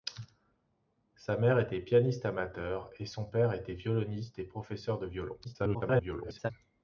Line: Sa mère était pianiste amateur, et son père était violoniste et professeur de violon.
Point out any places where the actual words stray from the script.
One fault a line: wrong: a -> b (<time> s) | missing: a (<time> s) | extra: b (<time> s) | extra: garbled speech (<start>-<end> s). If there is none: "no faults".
extra: garbled speech (5.4-6.5 s)